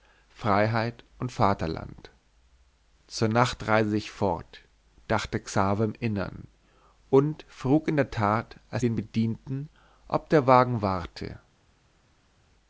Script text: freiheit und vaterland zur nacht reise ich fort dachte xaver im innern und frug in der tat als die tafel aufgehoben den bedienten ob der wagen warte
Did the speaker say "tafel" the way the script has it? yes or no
no